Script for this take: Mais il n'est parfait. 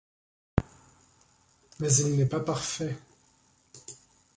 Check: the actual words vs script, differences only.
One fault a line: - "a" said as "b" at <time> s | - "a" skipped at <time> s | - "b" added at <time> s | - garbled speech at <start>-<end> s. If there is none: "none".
- "pas" added at 2.2 s